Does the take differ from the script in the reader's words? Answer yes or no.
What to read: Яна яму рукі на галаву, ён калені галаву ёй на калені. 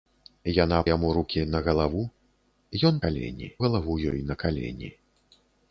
no